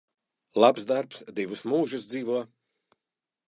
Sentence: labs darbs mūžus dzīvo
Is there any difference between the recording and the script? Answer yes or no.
yes